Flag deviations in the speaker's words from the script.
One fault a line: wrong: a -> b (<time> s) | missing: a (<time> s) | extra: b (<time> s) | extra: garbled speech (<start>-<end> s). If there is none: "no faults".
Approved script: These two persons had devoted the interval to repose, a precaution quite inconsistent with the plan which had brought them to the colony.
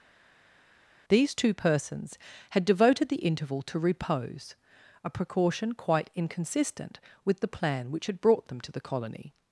no faults